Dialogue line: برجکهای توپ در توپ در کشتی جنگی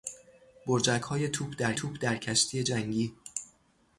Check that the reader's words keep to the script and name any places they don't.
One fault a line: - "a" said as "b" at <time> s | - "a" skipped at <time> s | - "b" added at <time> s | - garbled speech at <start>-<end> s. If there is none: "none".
none